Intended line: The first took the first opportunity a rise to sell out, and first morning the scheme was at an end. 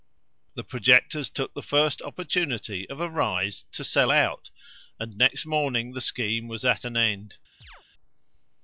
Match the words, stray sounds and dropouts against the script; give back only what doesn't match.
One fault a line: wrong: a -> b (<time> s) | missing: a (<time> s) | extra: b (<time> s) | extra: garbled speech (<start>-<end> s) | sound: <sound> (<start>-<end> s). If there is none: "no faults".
wrong: first -> projectors (0.6 s)
extra: of (2.9 s)
wrong: first -> next (5.2 s)
sound: chirp (7.6-7.8 s)